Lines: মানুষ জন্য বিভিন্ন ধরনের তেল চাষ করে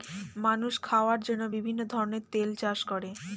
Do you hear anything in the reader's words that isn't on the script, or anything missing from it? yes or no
yes